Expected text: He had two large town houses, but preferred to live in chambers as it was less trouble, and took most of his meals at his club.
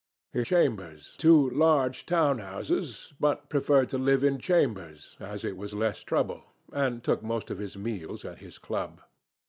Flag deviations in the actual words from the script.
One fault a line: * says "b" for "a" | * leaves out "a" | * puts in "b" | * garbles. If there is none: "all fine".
* says "chambers" for "had"